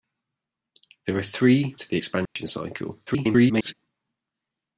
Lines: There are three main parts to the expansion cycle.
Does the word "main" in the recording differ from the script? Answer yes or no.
yes